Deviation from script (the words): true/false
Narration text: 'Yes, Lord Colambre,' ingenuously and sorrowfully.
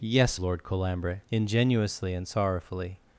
false